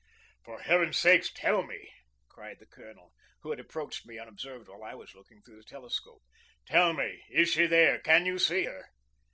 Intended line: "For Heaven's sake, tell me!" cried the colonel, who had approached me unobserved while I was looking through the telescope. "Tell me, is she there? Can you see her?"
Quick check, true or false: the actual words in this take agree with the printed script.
true